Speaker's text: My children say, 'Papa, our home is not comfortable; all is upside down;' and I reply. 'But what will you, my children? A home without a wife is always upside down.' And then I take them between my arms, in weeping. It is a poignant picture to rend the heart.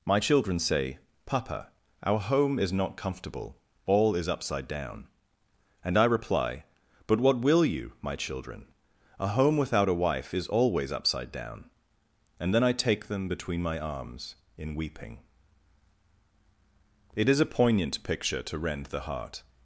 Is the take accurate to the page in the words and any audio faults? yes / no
yes